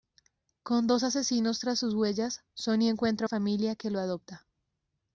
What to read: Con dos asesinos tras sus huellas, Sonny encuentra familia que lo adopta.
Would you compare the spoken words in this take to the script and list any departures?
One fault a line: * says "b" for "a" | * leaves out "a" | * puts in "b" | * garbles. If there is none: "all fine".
all fine